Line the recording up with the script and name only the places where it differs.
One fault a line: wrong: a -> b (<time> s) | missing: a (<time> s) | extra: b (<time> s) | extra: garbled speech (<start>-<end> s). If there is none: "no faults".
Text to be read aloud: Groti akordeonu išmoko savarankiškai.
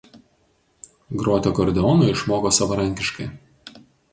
no faults